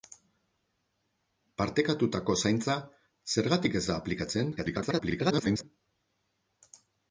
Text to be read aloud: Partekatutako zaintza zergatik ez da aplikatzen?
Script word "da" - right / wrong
right